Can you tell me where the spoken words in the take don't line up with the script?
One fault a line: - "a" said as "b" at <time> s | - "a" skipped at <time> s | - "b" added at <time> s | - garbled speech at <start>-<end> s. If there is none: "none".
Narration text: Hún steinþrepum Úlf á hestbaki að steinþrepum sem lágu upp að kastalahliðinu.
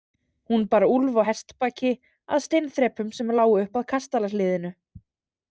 - "steinþrepum" said as "bar" at 0.7 s